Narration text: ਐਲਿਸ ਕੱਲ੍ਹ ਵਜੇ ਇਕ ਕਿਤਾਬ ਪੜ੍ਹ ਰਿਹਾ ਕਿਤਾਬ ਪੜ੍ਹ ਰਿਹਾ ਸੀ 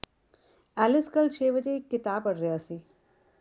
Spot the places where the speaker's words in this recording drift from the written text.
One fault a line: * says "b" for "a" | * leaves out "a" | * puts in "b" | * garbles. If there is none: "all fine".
* puts in "ਛੇ"
* leaves out "ਕਿਤਾਬ ਪੜ੍ਹ ਰਿਹਾ"